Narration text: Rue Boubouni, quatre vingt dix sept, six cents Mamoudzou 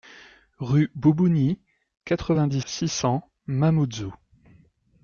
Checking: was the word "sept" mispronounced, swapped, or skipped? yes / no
yes